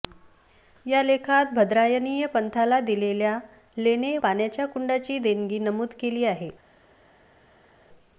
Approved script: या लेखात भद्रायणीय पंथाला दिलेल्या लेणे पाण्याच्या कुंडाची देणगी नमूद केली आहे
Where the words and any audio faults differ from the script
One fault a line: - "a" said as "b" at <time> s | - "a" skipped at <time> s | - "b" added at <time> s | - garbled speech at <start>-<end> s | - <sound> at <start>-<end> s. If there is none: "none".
none